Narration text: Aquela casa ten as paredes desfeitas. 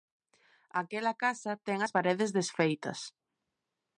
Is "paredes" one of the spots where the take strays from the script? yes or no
no